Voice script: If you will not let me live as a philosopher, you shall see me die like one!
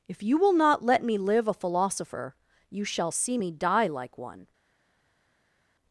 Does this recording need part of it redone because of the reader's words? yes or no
yes